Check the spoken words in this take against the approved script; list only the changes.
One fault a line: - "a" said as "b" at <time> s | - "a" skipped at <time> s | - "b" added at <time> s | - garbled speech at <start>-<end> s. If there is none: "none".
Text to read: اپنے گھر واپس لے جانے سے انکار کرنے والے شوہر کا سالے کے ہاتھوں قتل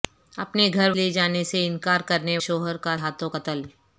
- "واپس" skipped at 0.9 s
- "والے" skipped at 2.4 s
- "سالے کے" skipped at 3.0 s